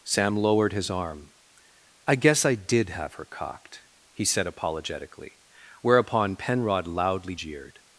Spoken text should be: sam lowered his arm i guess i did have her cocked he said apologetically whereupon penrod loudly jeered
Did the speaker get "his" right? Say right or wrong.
right